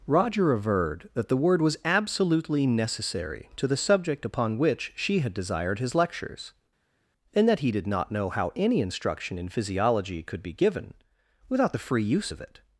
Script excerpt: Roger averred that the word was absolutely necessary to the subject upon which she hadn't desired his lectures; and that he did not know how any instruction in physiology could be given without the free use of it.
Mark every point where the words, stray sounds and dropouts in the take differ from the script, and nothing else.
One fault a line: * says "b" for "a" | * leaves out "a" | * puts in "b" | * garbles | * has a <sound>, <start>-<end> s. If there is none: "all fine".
* says "had" for "hadn't"